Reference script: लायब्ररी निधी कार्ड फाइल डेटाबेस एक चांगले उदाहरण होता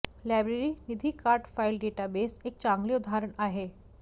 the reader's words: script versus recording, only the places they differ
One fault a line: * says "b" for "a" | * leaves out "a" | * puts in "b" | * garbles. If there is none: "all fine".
* says "आहे" for "होता"